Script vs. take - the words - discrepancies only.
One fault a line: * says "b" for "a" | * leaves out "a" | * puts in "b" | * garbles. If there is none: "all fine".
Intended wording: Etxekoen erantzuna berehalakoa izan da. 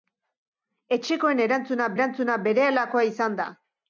* puts in "erantzuna"